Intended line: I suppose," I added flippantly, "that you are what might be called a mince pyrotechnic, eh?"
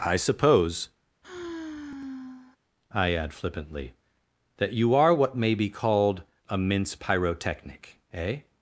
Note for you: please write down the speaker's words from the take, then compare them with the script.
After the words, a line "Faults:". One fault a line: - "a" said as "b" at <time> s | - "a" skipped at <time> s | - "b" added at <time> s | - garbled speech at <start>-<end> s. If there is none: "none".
I suppose," I add flippantly, "that you are what may be called a mince pyrotechnic, eh?"
Faults:
- "added" said as "add" at 3.1 s
- "might" said as "may" at 5.4 s